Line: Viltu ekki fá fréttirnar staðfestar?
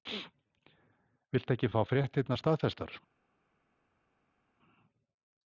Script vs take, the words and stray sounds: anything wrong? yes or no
no